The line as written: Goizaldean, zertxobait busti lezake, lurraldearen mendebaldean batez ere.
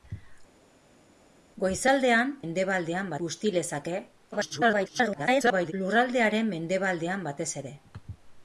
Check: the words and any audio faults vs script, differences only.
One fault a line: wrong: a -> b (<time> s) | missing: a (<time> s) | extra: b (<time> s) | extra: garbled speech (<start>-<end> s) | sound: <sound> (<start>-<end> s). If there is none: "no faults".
wrong: zertxobait -> mendebaldean (2.4 s)
extra: garbled speech (4.3-5.7 s)